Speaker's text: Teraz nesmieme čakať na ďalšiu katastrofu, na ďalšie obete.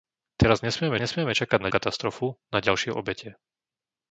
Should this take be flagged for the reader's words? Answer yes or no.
yes